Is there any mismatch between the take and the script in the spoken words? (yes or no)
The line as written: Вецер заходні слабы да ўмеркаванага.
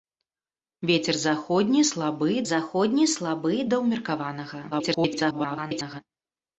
yes